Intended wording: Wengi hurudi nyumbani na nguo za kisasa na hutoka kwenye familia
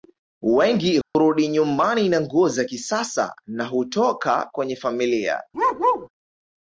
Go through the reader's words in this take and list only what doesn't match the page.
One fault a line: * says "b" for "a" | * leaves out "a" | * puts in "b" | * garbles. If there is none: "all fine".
all fine